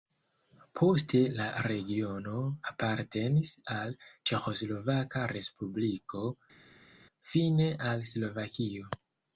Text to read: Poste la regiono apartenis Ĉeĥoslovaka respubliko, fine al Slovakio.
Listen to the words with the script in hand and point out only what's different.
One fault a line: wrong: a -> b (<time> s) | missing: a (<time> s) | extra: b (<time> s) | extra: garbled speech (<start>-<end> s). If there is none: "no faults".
extra: al (3.7 s)